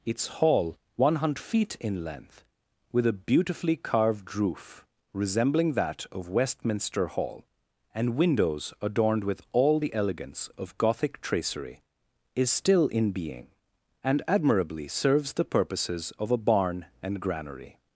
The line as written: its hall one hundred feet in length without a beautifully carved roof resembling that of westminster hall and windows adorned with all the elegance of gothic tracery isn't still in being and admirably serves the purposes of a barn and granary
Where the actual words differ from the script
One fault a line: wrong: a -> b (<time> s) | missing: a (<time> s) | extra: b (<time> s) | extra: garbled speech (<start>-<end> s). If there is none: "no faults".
wrong: without -> with (2.9 s)
wrong: isn't -> is (12.3 s)